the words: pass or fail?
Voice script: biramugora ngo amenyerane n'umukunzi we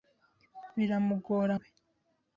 fail